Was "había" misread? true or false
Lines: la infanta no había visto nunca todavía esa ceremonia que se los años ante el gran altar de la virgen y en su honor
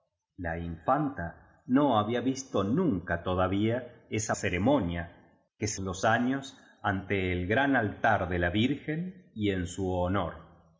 false